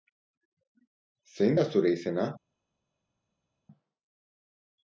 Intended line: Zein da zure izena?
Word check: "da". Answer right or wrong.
right